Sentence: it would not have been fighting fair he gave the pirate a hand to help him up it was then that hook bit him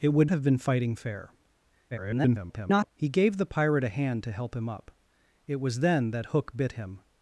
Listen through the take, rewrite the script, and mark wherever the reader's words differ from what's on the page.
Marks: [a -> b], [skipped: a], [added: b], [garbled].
it would [skipped: not] have been fighting fair [garbled] he gave the pirate a hand to help him up it was then that hook bit him